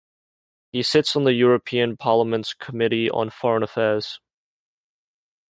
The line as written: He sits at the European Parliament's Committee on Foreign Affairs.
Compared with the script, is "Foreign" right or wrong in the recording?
right